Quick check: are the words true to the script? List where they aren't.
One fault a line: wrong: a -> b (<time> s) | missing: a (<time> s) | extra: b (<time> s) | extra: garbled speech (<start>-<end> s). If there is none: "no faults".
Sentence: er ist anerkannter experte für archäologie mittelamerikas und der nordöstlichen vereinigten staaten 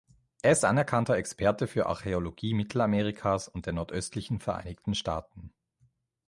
no faults